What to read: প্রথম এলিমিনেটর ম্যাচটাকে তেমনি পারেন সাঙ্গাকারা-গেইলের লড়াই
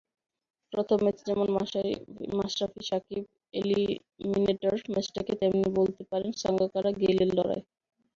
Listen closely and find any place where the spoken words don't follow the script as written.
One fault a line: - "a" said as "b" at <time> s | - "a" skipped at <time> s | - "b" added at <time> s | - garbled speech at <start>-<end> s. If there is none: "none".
- "ম্যাচে যেমন মাশরাফি-সাকিব" added at 1.0 s
- "বলতে" added at 5.8 s